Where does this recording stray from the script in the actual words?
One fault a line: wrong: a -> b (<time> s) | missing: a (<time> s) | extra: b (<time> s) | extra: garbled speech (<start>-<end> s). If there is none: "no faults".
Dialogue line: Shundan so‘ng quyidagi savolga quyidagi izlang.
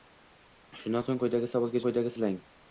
no faults